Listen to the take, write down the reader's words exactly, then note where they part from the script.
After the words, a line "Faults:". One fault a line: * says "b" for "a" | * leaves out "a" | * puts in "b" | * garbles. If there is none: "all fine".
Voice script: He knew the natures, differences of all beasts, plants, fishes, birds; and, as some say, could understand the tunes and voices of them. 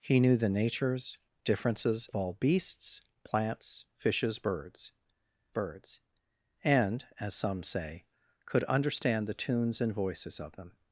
He knew the natures, differences all beasts, plants, fishes, birds birds; and, as some say, could understand the tunes and voices of them.
Faults:
* leaves out "of"
* puts in "birds"